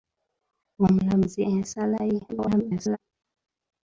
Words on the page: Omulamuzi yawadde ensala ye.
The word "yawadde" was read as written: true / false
false